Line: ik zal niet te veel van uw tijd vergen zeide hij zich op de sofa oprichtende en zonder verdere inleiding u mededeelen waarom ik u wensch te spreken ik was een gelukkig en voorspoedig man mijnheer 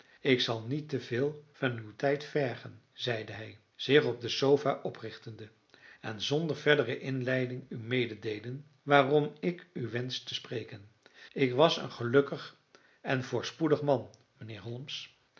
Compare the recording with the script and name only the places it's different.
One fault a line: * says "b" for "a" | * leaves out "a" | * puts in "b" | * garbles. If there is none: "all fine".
all fine